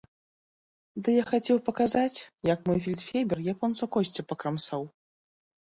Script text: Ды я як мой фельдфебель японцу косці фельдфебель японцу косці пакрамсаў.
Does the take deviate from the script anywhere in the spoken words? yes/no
yes